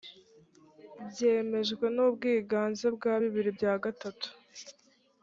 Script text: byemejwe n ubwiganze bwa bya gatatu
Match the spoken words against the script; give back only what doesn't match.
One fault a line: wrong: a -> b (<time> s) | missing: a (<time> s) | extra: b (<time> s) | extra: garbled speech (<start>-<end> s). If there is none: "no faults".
extra: bibiri (3.2 s)